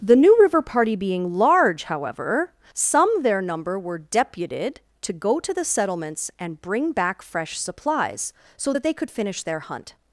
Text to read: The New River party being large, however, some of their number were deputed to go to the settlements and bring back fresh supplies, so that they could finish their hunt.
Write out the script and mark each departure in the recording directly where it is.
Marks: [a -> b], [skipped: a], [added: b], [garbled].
The New River party being large, however, some [skipped: of] their number were deputed to go to the settlements and bring back fresh supplies, so that they could finish their hunt.